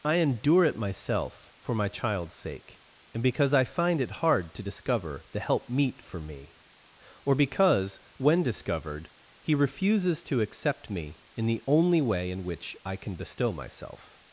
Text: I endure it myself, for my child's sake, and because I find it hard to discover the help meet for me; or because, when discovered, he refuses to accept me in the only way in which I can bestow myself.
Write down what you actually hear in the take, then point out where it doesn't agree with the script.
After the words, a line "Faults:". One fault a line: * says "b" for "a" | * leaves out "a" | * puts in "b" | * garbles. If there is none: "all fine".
I endure it myself, for my child's sake, and because I find it hard to discover the help meet for me; or because, when discovered, he refuses to accept me in the only way in which I can bestow myself.
Faults:
all fine